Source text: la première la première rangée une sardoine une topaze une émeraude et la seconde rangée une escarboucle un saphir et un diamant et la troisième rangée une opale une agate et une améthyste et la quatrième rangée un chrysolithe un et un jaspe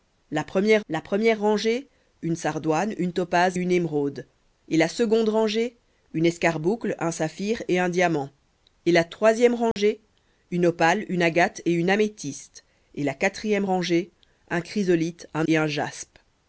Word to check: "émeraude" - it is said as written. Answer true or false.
true